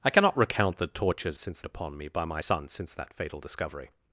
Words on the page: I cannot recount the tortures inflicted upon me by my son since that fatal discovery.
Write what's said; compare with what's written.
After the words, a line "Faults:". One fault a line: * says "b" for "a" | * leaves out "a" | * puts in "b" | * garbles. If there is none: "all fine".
I cannot recount the tortures since upon me by my son since that fatal discovery.
Faults:
* says "since" for "inflicted"